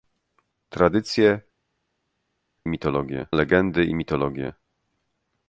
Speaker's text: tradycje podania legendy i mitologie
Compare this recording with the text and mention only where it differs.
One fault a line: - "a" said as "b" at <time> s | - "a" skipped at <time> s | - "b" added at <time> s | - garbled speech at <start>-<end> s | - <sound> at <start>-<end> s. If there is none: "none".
- "podania" said as "mitologie" at 2.7 s